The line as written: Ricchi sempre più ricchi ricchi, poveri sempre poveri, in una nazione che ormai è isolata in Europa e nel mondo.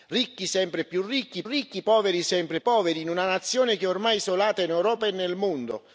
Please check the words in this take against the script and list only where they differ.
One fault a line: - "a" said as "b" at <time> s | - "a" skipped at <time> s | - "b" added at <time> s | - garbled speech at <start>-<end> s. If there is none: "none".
none